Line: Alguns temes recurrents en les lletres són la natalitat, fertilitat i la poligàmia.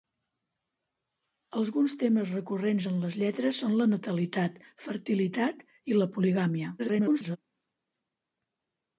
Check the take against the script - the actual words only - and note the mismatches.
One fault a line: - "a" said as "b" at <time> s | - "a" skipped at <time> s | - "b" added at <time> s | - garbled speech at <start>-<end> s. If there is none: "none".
- garbled speech at 6.8-7.4 s